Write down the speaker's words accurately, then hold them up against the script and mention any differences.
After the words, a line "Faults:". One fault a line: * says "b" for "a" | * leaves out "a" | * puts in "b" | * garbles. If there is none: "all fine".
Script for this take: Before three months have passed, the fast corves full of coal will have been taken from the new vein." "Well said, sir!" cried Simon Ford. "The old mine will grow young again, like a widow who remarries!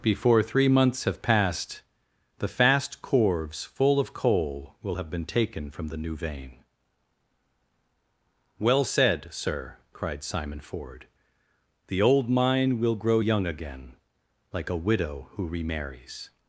Before three months have passed, the fast corves full of coal will have been taken from the new vein." "Well said, sir!" cried Simon Ford. "The old mine will grow young again, like a widow who remarries!
Faults:
all fine